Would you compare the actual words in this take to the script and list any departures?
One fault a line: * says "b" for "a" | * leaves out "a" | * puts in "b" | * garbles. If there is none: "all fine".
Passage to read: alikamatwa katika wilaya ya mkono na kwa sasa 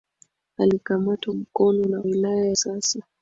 * leaves out "katika wilaya ya"
* says "wilaya" for "kwa"